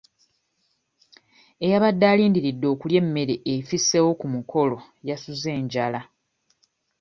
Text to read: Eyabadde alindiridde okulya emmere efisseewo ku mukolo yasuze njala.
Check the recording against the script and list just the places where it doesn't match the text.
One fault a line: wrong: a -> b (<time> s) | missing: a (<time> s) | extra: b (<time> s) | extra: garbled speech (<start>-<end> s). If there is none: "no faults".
no faults